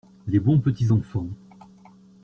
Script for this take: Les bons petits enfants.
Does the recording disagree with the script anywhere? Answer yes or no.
no